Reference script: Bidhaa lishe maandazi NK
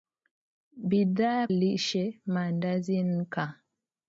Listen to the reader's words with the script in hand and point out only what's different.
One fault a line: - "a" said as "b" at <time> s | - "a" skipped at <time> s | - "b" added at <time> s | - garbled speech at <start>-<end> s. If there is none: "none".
none